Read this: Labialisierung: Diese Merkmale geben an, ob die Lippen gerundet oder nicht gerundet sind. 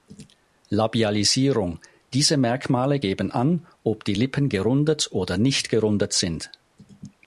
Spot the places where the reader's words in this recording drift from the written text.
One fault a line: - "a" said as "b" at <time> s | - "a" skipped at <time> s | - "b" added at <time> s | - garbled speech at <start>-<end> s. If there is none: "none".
none